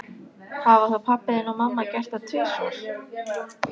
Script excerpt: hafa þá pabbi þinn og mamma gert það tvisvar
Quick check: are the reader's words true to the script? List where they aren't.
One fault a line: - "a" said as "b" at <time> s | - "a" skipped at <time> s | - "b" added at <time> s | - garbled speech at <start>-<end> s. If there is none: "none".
none